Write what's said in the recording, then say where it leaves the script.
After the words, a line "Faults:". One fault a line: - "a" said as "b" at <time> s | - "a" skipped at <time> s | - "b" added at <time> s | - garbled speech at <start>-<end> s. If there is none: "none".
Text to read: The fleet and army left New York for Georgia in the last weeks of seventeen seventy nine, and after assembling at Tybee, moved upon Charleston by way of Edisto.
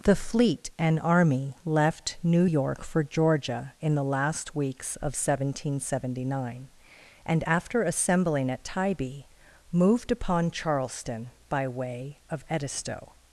The fleet and army left New York for Georgia in the last weeks of seventeen seventy nine, and after assembling at Tybee, moved upon Charleston by way of Edisto.
Faults:
none